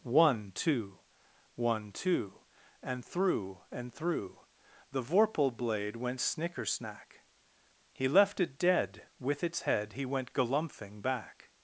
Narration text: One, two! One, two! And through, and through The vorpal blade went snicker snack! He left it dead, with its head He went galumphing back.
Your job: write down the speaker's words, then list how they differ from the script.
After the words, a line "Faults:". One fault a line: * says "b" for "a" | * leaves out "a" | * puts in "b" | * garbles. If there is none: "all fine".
One, two! One, two! And through, and through The vorpal blade went snicker snack! He left it dead, with its head He went galumphing back.
Faults:
all fine